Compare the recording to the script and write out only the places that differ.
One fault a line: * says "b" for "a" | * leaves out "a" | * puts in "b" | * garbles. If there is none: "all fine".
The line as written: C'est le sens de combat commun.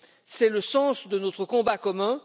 * puts in "notre"